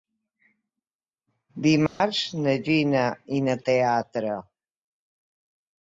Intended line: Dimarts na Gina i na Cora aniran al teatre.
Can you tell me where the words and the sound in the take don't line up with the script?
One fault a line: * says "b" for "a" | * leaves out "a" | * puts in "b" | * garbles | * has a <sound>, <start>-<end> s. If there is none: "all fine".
* has a dropout, 1.9-2.0 s
* leaves out "Cora aniran al"